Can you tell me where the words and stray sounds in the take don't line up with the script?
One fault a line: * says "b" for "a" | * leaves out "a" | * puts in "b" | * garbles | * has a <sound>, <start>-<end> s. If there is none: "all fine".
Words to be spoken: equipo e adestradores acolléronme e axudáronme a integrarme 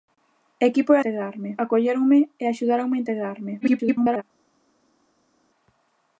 * says "integrarme" for "adestradores"
* garbles